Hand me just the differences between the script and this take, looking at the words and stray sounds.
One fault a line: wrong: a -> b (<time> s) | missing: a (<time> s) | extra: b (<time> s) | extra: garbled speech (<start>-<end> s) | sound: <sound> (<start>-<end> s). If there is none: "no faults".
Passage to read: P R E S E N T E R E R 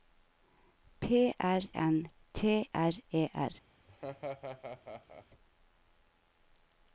missing: E S E (1.6 s)
missing: E (2.7 s)
sound: laugh (3.9-5.3 s)